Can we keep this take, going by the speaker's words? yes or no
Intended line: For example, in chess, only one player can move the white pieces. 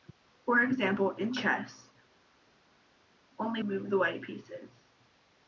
no